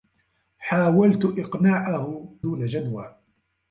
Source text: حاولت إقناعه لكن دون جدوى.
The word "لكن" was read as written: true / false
false